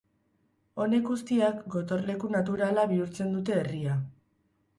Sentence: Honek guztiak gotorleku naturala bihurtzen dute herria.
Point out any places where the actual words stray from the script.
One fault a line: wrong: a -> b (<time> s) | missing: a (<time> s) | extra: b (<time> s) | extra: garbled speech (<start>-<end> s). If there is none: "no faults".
no faults